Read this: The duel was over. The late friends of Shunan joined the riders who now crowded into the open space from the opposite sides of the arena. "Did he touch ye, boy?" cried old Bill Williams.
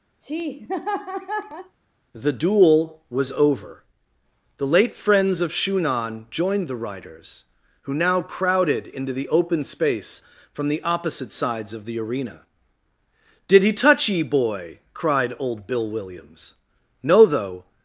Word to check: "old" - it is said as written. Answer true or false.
true